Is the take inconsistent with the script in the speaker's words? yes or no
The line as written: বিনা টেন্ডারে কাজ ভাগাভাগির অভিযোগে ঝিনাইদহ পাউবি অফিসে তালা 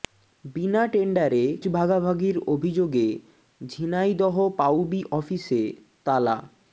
yes